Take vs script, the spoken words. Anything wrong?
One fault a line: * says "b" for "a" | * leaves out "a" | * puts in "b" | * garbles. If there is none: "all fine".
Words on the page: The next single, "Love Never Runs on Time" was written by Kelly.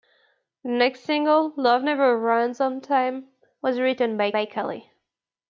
* puts in "by"